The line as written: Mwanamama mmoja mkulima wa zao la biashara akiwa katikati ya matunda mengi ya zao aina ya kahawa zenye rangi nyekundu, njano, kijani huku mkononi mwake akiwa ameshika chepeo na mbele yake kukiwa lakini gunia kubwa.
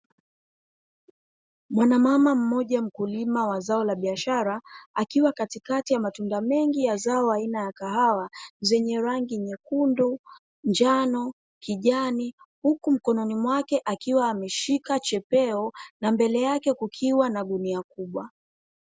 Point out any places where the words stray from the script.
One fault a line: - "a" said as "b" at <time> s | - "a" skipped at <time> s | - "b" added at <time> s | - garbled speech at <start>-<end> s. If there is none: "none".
- "lakini" said as "na" at 17.3 s